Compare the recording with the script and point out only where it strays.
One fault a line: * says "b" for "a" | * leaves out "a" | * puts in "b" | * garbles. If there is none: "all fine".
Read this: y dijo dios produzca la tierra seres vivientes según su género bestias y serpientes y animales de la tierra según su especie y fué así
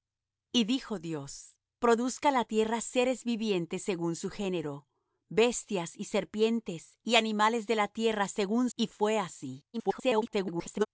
* leaves out "su especie"
* garbles